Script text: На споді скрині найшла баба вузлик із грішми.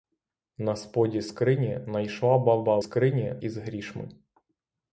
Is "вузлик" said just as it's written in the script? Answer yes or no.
no